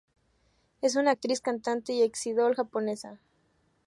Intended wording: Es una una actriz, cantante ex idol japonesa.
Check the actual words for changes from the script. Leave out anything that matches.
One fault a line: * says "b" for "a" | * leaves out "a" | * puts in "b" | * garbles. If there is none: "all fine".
* leaves out "una"
* puts in "y"